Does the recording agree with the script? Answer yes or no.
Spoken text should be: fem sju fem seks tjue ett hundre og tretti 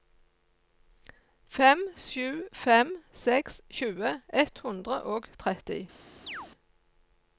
yes